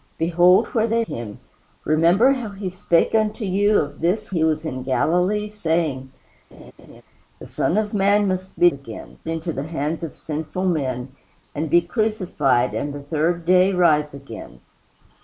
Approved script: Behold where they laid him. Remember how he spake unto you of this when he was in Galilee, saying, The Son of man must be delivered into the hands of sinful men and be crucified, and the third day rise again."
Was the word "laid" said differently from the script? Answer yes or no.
yes